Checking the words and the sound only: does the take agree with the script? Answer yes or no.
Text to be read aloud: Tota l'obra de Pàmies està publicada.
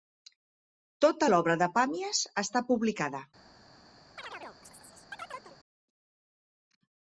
no